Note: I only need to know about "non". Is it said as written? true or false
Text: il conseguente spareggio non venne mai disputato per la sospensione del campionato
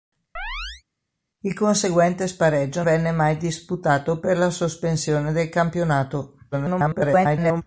false